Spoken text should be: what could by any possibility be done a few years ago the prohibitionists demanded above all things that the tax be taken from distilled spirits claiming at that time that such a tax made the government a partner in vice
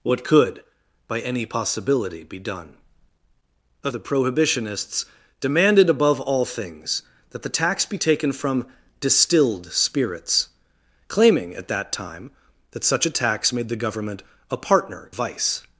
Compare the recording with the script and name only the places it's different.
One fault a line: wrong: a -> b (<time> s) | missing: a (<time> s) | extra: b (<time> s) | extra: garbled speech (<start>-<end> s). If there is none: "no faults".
missing: few years ago (3.9 s)
missing: in (15.1 s)